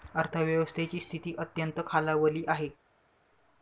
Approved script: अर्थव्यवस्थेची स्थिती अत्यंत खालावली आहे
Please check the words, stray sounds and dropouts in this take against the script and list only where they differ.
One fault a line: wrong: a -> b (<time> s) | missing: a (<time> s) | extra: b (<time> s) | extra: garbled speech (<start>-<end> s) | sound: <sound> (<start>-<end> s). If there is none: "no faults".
no faults